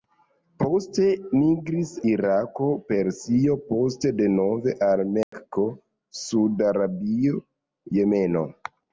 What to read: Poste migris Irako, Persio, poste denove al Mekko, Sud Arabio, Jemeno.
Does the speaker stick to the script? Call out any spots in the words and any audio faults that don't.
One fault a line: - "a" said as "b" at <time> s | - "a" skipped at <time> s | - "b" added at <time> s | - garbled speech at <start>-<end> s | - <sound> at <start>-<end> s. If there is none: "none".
- dropout at 5.2-5.3 s